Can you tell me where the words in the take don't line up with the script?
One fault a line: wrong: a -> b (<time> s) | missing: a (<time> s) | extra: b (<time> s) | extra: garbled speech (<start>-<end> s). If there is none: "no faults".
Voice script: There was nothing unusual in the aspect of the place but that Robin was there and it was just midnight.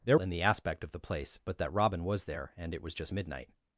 missing: was nothing unusual (0.2 s)